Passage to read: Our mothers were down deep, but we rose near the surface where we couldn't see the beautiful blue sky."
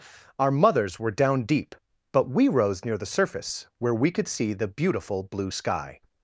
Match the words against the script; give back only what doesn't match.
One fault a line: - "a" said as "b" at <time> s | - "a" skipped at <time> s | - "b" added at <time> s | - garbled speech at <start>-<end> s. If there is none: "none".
- "couldn't" said as "could" at 4.1 s